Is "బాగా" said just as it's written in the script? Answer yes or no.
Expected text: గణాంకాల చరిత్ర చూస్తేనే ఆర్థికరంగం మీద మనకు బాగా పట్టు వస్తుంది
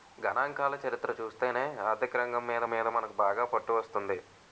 yes